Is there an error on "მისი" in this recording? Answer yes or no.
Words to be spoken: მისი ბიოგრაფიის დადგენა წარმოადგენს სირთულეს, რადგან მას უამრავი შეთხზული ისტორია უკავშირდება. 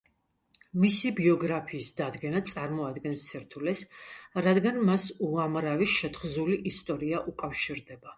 no